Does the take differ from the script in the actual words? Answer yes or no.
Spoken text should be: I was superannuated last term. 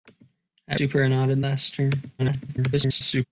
yes